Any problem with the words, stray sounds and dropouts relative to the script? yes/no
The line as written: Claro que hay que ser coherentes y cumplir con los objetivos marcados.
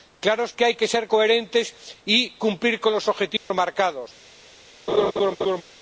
yes